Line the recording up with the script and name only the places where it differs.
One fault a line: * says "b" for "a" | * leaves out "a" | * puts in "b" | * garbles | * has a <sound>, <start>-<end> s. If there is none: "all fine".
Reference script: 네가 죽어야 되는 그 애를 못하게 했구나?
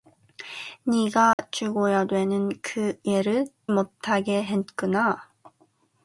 * has a dropout, 1.3-1.4 s